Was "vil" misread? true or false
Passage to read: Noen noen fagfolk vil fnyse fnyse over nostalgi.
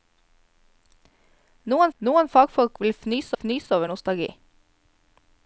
false